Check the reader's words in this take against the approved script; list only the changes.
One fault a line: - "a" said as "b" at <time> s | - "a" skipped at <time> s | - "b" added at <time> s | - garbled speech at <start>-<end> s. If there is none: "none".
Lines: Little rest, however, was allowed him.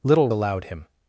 - "rest however was" skipped at 0.3 s